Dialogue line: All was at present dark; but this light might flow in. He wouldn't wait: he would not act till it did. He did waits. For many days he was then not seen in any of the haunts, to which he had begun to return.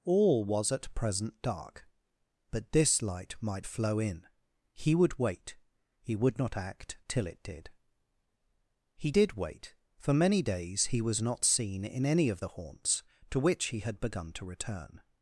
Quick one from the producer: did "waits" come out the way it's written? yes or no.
no